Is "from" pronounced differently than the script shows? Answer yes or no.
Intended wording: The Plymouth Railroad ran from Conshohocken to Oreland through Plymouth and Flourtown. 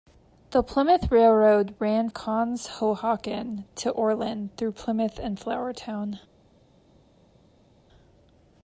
yes